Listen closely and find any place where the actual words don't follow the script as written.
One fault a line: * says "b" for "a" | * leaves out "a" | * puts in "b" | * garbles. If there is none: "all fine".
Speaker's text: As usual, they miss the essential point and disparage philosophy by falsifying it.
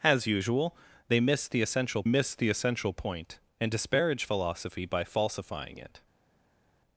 * puts in "miss the essential"